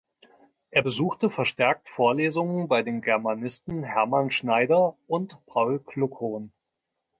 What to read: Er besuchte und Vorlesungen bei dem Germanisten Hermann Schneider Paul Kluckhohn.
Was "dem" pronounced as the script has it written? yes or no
no